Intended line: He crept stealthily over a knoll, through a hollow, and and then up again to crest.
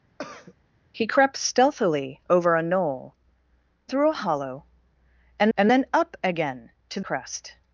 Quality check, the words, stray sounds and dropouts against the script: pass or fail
fail